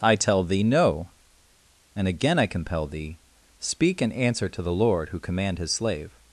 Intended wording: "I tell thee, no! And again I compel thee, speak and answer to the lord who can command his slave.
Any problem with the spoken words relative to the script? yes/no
yes